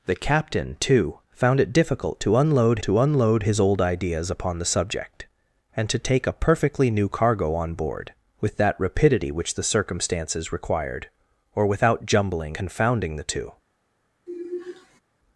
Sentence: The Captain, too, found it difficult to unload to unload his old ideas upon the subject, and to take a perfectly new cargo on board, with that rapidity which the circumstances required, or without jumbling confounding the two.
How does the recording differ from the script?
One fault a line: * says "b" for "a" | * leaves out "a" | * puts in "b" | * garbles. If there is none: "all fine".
all fine